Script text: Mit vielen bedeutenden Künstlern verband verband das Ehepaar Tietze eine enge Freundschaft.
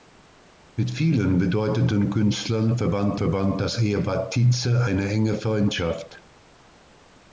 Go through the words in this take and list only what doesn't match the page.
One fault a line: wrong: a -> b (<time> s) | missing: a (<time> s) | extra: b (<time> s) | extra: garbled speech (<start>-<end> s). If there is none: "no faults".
no faults